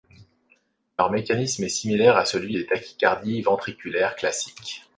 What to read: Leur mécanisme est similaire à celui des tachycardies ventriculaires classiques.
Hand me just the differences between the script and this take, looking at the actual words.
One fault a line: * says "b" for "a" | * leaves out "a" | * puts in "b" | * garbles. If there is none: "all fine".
all fine